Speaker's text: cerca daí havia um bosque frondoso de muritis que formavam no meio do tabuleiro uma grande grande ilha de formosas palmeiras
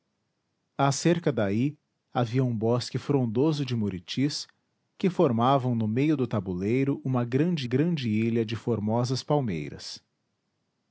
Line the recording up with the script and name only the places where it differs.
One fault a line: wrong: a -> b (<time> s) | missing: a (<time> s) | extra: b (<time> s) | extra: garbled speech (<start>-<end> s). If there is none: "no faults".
no faults